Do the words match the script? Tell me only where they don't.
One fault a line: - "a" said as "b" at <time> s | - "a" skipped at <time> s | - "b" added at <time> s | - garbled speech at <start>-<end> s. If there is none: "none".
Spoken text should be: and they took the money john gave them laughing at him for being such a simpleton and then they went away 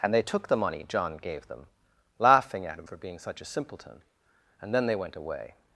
none